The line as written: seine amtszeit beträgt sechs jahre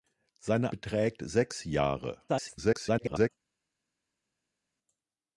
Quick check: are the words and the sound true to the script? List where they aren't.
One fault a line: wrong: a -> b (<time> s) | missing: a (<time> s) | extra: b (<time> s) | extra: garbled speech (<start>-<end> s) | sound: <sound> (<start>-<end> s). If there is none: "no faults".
missing: amtszeit (0.7 s)
extra: garbled speech (2.3-3.3 s)